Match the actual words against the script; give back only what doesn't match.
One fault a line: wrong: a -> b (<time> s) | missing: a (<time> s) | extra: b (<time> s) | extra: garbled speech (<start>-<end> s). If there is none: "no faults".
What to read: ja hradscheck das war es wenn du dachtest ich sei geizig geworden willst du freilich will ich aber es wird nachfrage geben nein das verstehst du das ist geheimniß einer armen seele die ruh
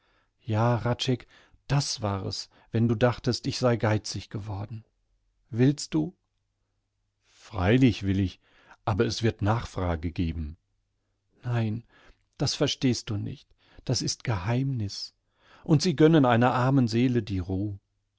extra: nicht (13.2 s)
extra: und sie gönnen (15.6 s)